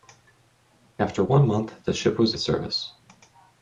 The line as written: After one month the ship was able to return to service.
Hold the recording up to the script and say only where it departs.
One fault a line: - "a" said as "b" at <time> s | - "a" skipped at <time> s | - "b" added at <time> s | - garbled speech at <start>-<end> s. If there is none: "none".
- "able to return" skipped at 2.4 s